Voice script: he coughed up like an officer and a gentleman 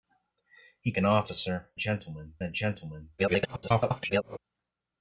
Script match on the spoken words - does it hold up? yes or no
no